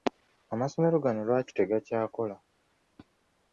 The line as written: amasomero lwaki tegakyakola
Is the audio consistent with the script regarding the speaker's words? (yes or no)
no